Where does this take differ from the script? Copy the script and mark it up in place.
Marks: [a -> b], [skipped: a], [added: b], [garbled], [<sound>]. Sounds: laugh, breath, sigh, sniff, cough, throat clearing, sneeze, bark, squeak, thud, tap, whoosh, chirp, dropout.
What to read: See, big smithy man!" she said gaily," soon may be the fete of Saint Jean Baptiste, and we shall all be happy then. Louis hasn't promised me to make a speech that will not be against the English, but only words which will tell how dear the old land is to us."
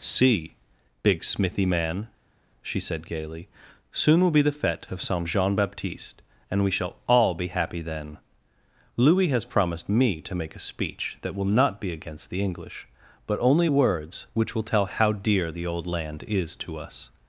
See, big smithy man!" she said gaily," soon [may -> will] be the fete of Saint Jean Baptiste, and we shall all be happy then. Louis [hasn't -> has] promised me to make a speech that will not be against the English, but only words which will tell how dear the old land is to us."